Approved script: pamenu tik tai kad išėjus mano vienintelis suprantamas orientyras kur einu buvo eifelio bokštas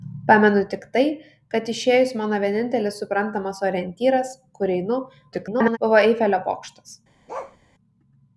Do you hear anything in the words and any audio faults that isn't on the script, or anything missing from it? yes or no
yes